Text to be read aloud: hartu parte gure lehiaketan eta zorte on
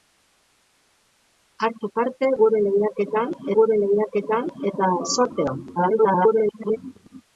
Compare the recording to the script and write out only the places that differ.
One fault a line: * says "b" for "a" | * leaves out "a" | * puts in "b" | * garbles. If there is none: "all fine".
* puts in "gure lehiaketan"
* garbles